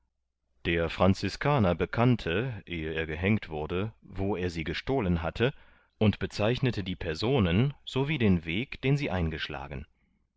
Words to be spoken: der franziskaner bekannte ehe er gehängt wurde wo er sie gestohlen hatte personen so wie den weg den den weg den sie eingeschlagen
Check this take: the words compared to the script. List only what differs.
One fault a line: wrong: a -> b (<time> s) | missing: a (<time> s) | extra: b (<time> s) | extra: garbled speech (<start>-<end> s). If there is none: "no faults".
extra: und bezeichnete die (6.0 s)
missing: den weg den (9.0 s)